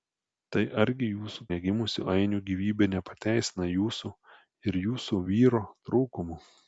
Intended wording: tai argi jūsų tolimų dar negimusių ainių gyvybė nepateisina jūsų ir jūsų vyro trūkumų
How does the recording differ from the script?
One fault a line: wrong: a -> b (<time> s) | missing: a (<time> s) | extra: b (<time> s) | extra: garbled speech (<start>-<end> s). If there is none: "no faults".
missing: tolimų dar (1.4 s)